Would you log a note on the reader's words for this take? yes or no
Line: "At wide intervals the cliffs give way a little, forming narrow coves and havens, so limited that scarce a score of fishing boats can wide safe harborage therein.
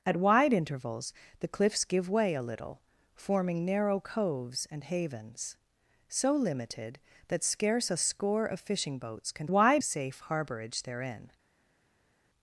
no